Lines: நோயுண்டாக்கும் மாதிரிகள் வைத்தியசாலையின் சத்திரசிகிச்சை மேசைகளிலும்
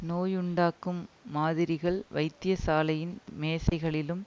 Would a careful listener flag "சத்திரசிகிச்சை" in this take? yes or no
yes